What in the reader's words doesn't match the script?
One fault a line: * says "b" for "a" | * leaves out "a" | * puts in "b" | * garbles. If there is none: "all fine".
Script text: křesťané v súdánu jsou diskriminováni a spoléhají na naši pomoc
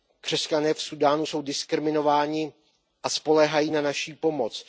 all fine